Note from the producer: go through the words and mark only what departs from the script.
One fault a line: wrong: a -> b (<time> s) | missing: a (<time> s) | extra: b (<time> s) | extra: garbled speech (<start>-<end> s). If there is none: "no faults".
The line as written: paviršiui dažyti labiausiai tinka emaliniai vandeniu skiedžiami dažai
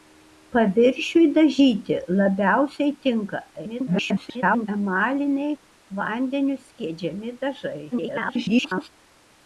extra: garbled speech (3.6-4.7 s)
extra: garbled speech (7.9-8.9 s)